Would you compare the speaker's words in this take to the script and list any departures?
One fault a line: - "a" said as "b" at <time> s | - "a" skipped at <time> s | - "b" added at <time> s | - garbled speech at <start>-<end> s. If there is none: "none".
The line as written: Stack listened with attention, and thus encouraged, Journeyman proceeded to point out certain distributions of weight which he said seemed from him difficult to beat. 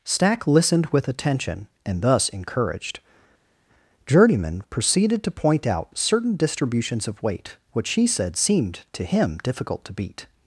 - "from" said as "to" at 8.9 s